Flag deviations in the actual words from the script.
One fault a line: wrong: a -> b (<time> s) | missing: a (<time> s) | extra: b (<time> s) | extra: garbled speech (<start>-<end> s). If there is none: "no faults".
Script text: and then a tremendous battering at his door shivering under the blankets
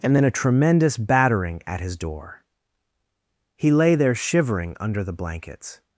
extra: he lay there (3.6 s)